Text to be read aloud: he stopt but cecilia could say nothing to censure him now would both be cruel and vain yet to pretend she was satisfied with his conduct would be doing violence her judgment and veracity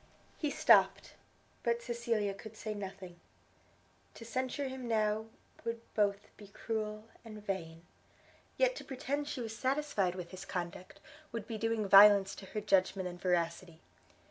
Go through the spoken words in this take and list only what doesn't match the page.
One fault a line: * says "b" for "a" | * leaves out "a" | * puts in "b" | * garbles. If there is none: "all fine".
* puts in "to"